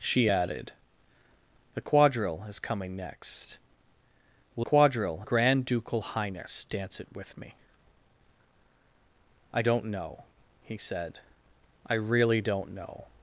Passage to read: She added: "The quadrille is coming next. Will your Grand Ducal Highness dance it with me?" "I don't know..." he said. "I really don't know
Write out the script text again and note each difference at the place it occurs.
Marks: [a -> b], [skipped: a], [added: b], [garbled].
She added: "The quadrille is coming next. Will [your -> quadrille] Grand Ducal Highness dance it with me?" "I don't know..." he said. "I really don't know